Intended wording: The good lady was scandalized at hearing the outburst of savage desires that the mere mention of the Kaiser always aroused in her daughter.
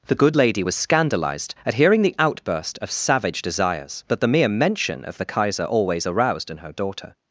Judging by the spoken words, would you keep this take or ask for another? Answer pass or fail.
pass